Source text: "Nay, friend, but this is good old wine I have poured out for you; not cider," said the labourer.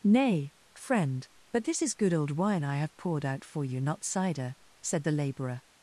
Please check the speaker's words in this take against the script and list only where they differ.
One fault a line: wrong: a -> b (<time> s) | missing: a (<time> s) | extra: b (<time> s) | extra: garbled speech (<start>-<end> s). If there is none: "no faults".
no faults